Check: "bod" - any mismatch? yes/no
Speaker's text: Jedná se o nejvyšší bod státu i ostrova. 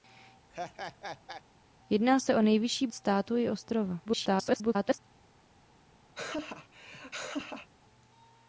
yes